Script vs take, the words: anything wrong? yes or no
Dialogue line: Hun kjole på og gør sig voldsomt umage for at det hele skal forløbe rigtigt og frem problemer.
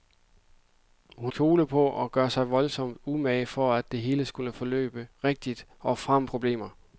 no